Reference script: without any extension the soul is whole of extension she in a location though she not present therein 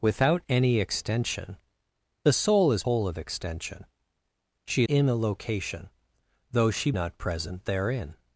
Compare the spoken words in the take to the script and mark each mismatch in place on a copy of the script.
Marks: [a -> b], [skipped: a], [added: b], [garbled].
without any extension the soul is whole of extension she in a location though she not present therein